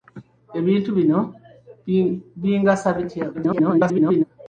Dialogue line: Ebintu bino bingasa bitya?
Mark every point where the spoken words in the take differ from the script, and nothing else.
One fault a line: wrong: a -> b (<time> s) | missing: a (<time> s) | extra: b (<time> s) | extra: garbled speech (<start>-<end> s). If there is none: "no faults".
extra: garbled speech (3.3-4.2 s)